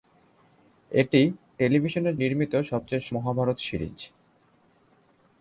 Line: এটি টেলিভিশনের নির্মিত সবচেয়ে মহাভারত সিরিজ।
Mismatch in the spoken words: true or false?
false